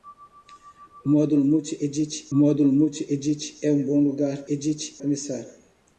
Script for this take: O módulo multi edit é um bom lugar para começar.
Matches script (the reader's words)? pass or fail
fail